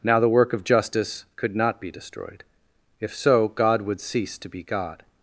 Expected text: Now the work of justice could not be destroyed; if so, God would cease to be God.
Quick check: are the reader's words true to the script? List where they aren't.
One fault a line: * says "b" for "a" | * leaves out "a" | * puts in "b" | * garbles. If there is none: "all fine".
all fine